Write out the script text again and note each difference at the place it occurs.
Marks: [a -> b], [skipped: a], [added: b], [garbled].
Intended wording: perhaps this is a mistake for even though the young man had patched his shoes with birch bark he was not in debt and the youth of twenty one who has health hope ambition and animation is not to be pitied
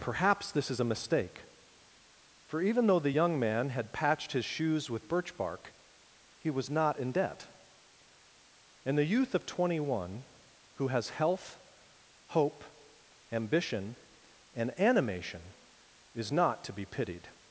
perhaps this is a mistake for even though the young man had patched his shoes with birch bark he was not in debt and the youth of twenty one who has health hope ambition and animation is not to be pitied